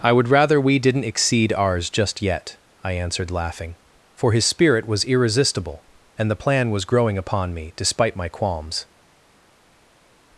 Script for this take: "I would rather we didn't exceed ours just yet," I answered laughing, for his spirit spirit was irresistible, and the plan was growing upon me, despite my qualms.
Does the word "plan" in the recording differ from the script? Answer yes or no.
no